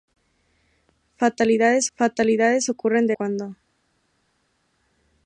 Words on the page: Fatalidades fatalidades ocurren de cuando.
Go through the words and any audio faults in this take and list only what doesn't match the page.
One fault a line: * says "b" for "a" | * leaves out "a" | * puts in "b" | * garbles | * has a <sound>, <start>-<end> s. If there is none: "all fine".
all fine